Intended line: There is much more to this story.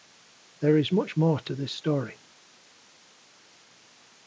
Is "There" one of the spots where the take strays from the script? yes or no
no